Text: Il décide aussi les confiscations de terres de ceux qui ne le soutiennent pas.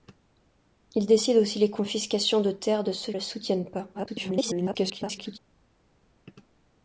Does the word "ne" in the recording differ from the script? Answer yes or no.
yes